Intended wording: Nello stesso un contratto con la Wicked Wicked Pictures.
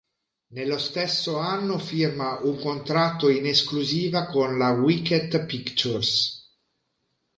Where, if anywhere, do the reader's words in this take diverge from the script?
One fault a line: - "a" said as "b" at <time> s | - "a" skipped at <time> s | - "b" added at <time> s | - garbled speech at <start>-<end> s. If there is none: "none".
- "anno firma" added at 1.4 s
- "in esclusiva" added at 3.3 s
- "Wicked" skipped at 5.5 s